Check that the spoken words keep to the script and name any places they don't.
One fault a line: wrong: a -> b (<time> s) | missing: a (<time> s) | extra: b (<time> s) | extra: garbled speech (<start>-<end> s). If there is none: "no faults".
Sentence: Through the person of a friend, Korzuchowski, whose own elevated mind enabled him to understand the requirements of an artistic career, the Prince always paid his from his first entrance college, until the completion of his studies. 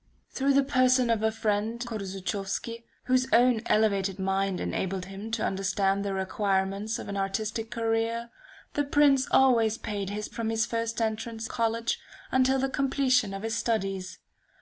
no faults